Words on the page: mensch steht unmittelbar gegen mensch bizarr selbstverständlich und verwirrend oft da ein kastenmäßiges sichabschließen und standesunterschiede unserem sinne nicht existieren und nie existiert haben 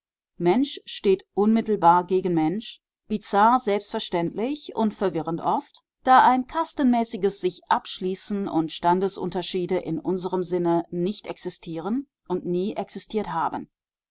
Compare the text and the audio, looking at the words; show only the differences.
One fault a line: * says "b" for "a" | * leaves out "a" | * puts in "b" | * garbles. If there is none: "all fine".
* puts in "in"